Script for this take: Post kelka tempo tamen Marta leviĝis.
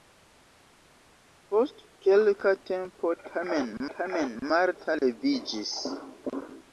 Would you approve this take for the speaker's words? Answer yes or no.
no